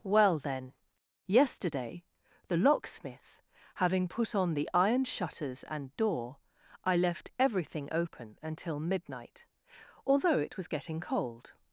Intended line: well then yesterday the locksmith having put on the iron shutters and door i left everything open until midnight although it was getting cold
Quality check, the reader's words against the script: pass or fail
pass